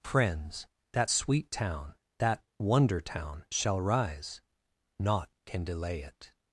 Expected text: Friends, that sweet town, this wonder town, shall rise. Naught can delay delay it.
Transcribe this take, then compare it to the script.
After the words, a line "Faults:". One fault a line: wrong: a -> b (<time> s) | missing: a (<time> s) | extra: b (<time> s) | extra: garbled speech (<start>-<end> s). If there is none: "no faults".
Friends, that sweet town, that wonder town, shall rise. Naught can delay it.
Faults:
wrong: this -> that (2.2 s)
missing: delay (6.0 s)